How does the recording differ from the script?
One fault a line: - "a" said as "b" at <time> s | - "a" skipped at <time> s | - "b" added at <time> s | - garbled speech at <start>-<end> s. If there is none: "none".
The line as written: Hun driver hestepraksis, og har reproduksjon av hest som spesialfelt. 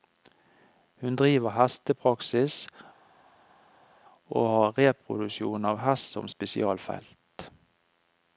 none